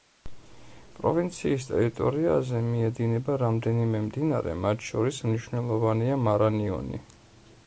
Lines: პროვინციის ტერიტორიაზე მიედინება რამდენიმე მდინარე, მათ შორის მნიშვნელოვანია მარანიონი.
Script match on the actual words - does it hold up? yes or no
yes